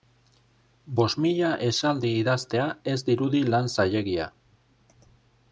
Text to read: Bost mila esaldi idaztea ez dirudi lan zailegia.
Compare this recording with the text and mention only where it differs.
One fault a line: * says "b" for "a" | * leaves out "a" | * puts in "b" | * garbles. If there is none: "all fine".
all fine